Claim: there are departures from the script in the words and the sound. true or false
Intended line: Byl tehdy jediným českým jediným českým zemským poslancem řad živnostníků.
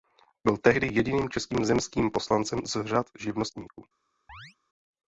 true